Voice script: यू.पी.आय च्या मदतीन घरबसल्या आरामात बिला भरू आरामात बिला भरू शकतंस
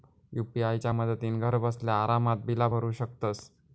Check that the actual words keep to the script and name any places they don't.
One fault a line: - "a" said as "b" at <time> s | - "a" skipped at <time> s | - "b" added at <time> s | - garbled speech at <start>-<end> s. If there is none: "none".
- "आरामात बिला भरू" skipped at 2.9 s